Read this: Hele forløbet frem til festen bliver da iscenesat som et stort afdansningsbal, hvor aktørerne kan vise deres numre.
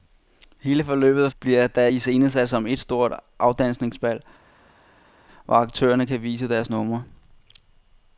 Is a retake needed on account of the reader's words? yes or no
yes